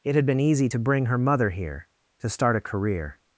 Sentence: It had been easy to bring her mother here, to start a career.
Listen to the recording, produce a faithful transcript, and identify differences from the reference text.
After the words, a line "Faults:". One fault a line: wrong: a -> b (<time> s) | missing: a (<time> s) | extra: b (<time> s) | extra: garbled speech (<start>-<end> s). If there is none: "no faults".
It had been easy to bring her mother here, to start a career.
Faults:
no faults